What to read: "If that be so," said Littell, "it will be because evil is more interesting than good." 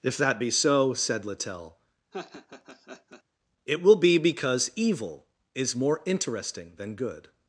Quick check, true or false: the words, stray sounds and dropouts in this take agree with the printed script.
false